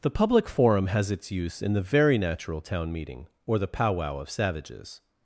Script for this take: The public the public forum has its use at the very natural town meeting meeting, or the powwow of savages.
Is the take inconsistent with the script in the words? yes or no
yes